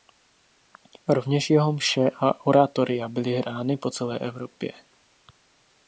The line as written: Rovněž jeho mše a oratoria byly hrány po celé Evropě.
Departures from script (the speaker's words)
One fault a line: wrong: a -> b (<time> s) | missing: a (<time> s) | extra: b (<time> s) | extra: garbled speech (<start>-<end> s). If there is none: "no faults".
no faults